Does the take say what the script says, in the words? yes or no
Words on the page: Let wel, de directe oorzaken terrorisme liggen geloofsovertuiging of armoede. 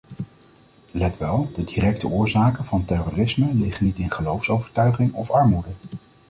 no